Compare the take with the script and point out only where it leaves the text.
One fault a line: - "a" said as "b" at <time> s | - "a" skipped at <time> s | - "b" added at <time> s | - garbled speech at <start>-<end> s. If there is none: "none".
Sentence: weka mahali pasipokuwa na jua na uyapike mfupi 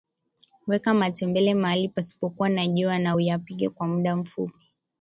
- "matembele" added at 0.9 s
- "kwa muda" added at 3.7 s